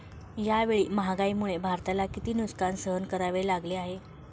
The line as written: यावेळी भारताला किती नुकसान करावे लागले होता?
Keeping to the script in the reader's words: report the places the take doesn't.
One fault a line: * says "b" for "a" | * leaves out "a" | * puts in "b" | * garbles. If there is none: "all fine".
* puts in "महागाईमुळे"
* puts in "सहन"
* says "आहे" for "होता"